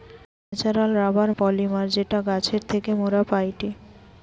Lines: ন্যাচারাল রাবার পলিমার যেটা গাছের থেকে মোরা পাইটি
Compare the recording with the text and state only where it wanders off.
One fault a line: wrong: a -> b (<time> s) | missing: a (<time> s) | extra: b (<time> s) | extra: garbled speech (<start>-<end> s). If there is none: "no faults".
no faults